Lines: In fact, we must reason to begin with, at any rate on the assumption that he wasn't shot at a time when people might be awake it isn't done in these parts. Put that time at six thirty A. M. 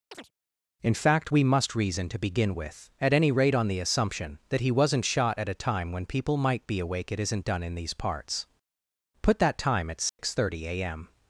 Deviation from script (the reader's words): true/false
false